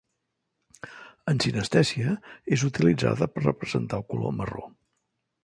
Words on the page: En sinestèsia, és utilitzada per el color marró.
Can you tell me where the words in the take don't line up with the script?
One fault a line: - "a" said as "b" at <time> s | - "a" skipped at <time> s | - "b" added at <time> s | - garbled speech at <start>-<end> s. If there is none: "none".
- "representar" added at 3.5 s